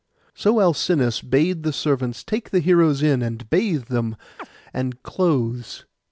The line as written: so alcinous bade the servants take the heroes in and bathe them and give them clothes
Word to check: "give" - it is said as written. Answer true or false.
false